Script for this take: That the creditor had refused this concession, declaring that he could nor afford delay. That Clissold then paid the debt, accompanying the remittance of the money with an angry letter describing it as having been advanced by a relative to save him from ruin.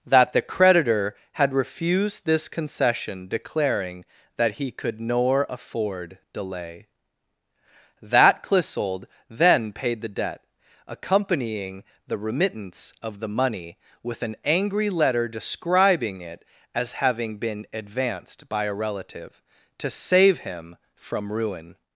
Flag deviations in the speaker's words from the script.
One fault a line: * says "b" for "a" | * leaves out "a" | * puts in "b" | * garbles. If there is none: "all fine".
all fine